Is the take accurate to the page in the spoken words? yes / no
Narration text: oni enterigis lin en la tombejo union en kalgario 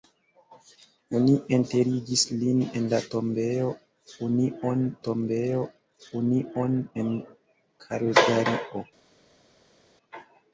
no